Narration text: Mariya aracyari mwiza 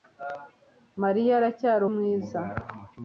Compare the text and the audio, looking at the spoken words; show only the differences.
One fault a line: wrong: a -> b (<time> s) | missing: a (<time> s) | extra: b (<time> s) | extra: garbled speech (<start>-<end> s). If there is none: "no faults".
no faults